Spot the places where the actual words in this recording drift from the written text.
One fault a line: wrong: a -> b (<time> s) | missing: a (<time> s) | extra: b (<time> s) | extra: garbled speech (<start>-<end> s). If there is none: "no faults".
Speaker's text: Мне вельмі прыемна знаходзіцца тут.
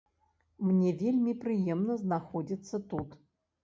no faults